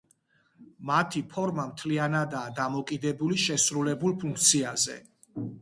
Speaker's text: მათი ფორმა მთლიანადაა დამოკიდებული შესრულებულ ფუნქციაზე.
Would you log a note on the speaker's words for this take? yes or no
no